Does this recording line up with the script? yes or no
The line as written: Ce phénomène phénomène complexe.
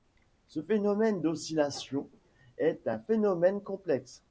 no